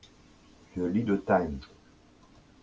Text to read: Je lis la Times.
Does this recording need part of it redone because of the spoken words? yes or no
yes